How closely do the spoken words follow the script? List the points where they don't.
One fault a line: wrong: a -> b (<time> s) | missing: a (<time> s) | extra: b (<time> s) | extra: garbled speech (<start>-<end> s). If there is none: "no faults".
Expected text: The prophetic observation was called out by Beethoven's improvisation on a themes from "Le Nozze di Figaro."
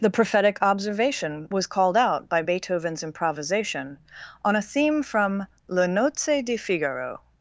wrong: themes -> theme (4.6 s)